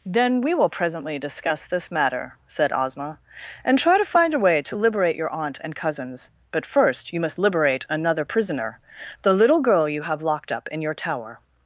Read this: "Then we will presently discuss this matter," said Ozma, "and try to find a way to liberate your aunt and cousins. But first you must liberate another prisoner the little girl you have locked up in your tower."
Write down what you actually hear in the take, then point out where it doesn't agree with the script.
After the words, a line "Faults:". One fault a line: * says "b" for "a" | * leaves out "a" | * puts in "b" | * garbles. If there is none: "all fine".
"Then we will presently discuss this matter," said Ozma, "and try to find a way to liberate your aunt and cousins. But first you must liberate another prisoner the little girl you have locked up in your tower."
Faults:
all fine